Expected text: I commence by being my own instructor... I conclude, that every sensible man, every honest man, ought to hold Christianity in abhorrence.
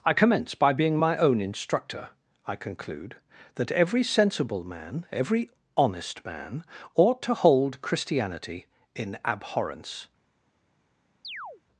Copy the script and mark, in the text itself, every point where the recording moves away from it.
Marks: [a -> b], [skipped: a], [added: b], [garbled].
I commence by being my own instructor... I conclude, that every sensible man, every honest man, ought to hold Christianity in abhorrence.